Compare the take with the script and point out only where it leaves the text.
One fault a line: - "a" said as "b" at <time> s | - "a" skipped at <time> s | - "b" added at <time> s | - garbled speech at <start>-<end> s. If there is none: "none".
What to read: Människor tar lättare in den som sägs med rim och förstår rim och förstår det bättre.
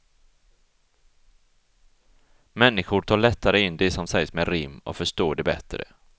- "den" said as "det" at 3.8 s
- "rim och förstår" skipped at 5.4 s